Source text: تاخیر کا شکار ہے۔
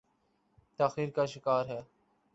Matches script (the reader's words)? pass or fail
pass